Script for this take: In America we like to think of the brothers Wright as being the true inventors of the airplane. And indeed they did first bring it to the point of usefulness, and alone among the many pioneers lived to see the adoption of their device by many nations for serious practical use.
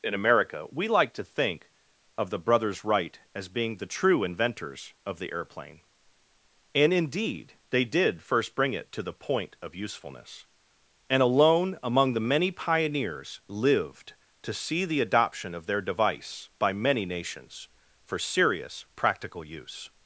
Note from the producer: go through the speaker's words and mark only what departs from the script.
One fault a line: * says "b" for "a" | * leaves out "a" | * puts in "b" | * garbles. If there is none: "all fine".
all fine